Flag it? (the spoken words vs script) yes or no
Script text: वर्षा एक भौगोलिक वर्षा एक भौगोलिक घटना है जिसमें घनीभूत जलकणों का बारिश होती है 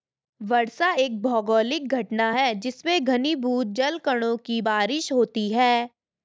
yes